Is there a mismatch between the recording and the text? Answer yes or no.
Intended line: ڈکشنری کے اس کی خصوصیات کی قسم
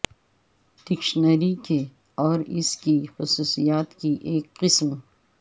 yes